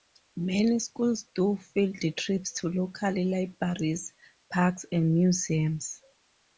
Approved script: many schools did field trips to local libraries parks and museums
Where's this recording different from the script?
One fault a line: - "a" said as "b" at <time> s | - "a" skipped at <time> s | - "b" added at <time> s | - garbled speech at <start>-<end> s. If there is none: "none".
- "did" said as "do" at 1.4 s